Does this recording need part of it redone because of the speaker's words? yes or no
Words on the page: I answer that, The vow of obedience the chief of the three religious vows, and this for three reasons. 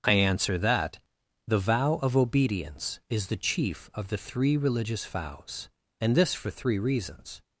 yes